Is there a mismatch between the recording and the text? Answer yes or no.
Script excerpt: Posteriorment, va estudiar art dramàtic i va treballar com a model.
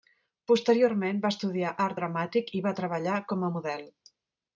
no